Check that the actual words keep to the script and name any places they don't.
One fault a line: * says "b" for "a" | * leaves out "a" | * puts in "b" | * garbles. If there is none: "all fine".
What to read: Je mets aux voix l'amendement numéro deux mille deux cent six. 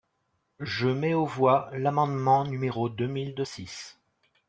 * leaves out "cent"